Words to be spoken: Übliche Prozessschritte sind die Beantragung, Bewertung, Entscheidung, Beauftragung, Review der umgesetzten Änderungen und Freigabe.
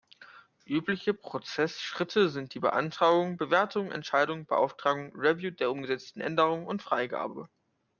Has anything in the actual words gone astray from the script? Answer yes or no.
no